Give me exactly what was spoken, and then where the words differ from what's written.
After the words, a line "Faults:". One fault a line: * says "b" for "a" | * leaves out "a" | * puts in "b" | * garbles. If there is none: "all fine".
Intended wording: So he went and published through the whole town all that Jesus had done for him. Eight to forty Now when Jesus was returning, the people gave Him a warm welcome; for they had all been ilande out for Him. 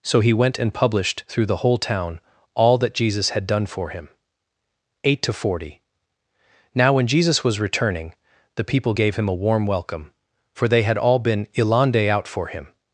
So he went and published through the whole town all that Jesus had done for him. Eight to forty Now when Jesus was returning, the people gave Him a warm welcome; for they had all been ilande out for Him.
Faults:
all fine